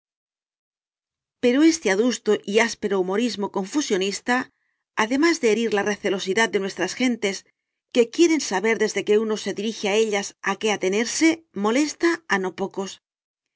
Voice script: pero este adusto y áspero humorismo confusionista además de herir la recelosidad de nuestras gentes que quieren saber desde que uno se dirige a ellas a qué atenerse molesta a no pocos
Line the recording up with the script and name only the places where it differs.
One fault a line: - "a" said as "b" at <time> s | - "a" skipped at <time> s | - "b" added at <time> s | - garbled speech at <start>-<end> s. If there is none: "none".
none